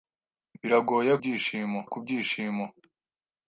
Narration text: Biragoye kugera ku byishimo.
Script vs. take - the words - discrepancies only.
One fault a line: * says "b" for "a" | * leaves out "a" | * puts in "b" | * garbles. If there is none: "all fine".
* says "byishimo" for "kugera"